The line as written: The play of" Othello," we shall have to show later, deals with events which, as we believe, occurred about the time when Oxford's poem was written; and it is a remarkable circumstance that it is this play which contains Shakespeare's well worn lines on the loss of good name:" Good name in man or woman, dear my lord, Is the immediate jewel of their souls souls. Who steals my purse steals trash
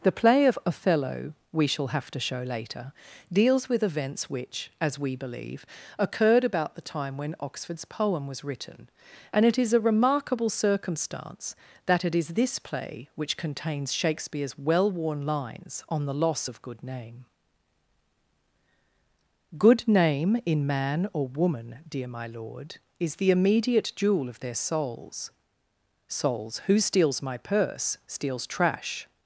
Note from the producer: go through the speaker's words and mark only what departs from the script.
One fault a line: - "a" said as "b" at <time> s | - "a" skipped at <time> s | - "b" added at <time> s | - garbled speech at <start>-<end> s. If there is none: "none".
none